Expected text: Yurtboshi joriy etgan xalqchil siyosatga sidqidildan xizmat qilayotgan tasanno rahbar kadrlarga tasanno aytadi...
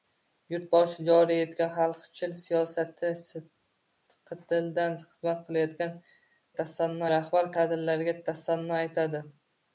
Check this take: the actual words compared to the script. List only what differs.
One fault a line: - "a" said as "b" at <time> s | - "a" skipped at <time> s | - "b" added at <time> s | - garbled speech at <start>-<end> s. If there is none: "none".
none